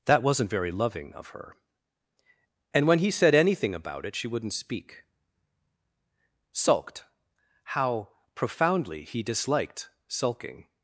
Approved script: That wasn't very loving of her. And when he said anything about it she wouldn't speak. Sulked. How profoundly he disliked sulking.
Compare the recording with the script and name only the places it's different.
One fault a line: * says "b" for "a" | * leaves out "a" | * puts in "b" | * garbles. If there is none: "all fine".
all fine